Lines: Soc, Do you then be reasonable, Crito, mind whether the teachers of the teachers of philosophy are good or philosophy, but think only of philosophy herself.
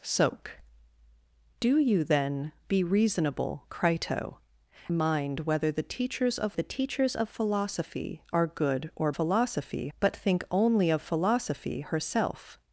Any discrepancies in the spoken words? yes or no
no